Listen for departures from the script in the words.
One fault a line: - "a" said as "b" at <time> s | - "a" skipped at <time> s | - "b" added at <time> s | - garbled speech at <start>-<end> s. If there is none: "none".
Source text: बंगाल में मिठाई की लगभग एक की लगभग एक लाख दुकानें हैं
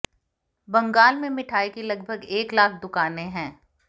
- "की लगभग एक" skipped at 2.5 s